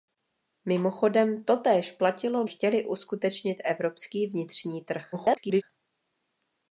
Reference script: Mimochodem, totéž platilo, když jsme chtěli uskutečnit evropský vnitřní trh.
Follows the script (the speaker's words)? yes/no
no